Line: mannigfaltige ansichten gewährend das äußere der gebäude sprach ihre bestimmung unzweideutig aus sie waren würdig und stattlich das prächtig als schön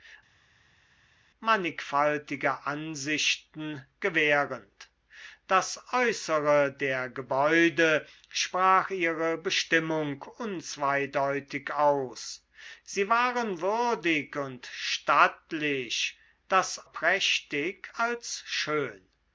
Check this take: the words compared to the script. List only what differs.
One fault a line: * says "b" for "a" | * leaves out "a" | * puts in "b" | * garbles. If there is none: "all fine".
all fine